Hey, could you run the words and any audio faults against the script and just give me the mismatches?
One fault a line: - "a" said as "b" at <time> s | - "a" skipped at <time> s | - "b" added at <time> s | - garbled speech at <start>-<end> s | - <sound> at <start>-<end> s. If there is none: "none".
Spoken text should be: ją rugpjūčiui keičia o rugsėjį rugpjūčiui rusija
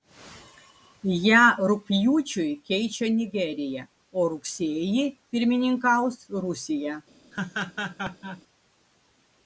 - "nigerija" added at 3.2 s
- "rugpjūčiui" said as "pirmininkaus" at 5.4 s
- laugh at 7.3-8.4 s